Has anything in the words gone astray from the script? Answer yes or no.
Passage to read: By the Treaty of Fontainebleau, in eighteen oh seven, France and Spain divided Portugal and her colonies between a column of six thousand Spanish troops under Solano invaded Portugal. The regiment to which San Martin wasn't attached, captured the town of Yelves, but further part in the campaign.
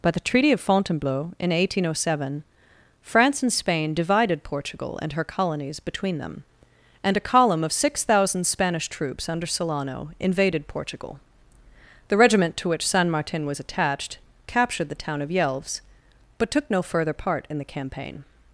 yes